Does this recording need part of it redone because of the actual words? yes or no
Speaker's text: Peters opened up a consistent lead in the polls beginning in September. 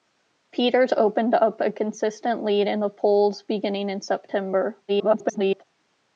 yes